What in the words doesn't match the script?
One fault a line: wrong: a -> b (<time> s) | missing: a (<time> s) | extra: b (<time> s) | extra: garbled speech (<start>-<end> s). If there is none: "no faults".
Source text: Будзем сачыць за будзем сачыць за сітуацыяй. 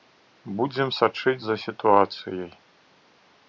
missing: будзем сачыць за (1.6 s)